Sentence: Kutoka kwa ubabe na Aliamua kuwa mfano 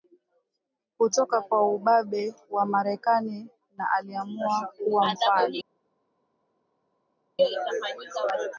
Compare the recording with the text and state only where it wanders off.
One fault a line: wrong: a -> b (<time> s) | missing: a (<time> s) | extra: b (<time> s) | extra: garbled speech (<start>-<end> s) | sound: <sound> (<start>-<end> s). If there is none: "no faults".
extra: wa Marekani (2.5 s)